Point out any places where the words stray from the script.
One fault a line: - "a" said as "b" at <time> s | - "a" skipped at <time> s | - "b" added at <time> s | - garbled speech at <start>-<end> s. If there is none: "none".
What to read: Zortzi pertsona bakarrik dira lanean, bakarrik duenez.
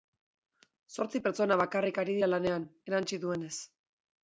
- "ari" added at 2.0 s
- "bakarrik" said as "erantsi" at 2.9 s